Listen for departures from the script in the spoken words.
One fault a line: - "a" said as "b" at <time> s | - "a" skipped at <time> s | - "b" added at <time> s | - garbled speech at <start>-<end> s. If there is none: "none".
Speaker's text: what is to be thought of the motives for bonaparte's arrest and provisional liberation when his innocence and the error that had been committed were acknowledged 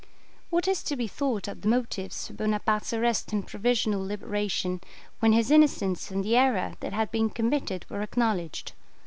none